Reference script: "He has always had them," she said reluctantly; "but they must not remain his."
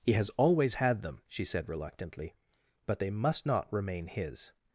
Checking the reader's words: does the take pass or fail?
pass